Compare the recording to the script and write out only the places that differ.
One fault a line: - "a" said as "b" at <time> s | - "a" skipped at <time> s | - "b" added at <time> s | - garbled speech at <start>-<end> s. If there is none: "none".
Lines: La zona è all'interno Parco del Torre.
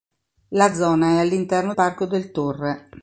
none